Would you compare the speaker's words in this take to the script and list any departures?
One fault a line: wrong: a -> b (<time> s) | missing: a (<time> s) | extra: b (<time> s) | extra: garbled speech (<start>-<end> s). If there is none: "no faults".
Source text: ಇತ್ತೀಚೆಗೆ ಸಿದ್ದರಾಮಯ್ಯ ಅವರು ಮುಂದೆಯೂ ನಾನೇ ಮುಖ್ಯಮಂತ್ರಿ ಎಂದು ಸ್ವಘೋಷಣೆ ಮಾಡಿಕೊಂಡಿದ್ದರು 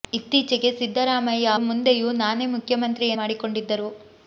missing: ಅವರು (1.5 s)
missing: ಎಂದು ಸ್ವಘೋಷಣೆ (3.1 s)